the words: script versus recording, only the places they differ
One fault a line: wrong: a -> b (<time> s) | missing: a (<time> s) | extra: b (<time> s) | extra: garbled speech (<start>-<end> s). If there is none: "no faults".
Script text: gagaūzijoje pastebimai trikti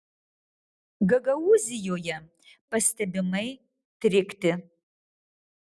no faults